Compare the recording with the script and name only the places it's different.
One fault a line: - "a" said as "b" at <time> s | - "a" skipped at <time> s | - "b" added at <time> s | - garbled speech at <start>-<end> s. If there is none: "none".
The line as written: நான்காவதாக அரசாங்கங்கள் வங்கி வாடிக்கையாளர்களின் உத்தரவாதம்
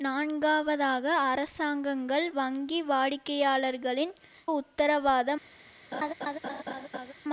none